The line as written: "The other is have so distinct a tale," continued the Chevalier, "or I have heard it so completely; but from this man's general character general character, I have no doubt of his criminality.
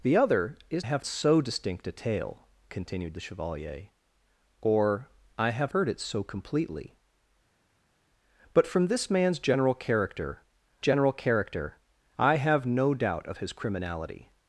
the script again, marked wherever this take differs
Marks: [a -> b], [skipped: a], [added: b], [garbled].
"The other is have so distinct a tale," continued the Chevalier, "or I have heard it so completely; but from this man's general character general character, I have no doubt of his criminality.